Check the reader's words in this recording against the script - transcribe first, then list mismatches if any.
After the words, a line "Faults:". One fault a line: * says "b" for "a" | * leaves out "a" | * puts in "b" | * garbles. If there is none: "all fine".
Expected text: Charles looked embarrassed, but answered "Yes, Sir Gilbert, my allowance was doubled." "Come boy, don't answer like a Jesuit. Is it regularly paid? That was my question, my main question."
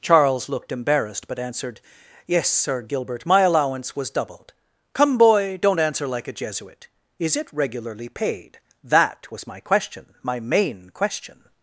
Charles looked embarrassed, but answered "Yes, Sir Gilbert, my allowance was doubled." "Come boy, don't answer like a Jesuit. Is it regularly paid? That was my question, my main question."
Faults:
all fine